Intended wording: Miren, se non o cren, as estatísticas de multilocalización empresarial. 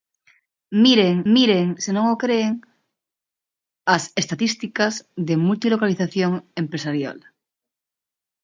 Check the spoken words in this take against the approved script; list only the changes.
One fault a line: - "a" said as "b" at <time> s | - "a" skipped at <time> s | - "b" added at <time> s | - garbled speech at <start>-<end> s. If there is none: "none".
- "miren" added at 1.3 s